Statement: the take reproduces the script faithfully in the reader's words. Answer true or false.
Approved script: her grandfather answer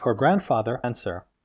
true